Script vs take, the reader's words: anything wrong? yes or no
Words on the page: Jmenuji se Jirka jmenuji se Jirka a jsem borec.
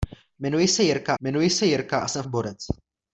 no